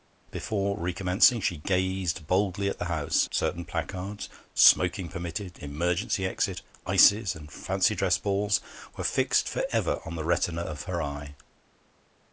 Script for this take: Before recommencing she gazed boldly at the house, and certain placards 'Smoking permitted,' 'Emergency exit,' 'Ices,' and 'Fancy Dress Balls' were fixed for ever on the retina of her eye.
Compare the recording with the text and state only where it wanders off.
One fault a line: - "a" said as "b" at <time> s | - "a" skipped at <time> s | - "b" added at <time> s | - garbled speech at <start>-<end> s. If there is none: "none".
- "and" skipped at 3.3 s